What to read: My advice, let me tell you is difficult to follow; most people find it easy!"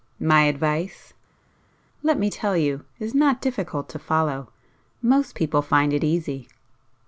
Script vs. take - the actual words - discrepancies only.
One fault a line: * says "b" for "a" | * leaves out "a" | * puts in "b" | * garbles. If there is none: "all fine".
* puts in "not"